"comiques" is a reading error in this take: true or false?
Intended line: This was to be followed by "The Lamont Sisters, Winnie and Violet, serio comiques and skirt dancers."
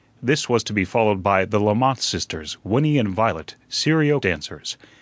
true